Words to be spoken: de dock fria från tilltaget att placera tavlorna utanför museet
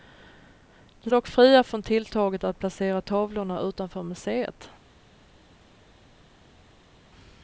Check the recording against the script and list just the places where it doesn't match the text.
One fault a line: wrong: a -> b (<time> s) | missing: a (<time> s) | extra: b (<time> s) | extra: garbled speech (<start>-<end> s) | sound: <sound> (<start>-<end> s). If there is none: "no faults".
no faults